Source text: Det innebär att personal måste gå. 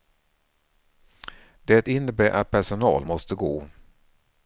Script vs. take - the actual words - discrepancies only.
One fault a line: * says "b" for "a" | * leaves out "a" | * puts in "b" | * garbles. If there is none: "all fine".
all fine